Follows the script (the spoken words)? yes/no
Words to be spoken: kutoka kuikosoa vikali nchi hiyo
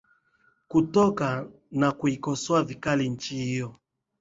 no